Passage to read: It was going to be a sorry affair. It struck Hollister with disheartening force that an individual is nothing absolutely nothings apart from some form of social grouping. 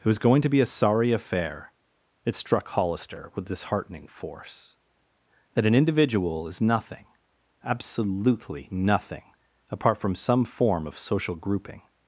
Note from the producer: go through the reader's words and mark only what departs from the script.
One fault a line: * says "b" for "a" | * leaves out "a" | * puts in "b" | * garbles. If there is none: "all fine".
* says "nothing" for "nothings"